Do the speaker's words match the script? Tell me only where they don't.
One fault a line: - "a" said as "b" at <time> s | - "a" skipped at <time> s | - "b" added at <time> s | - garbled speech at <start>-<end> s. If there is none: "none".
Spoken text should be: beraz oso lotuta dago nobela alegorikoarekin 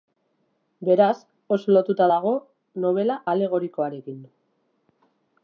none